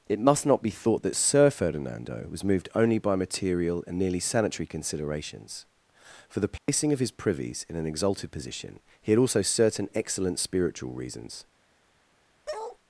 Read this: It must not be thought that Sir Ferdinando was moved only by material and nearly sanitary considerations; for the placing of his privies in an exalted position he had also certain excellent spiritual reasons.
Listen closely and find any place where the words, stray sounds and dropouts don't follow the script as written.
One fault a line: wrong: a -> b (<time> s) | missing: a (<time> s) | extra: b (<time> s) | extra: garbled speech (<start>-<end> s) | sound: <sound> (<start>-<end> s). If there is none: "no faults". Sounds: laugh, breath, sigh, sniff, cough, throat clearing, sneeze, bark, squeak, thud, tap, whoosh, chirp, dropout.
sound: dropout (6.6-6.7 s)
sound: bark (12.5-12.8 s)